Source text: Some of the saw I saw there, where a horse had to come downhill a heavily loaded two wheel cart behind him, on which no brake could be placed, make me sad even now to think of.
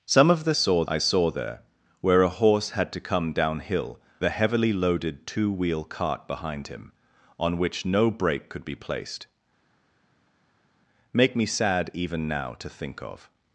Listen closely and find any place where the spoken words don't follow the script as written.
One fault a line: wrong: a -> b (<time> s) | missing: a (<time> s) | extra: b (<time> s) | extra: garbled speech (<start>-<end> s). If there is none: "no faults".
no faults